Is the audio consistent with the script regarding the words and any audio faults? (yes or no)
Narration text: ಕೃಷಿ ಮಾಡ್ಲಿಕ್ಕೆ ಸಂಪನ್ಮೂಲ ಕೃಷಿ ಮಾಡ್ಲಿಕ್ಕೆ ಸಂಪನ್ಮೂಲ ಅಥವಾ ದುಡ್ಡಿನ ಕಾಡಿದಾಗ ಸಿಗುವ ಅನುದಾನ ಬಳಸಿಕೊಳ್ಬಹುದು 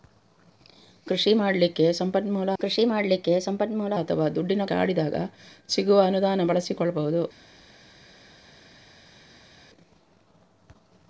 yes